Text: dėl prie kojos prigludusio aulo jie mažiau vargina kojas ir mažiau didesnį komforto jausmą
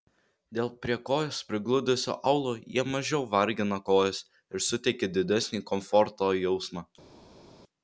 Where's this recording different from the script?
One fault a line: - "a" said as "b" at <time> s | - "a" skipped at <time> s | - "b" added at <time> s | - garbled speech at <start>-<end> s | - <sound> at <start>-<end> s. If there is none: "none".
- "mažiau" said as "suteikia" at 4.7 s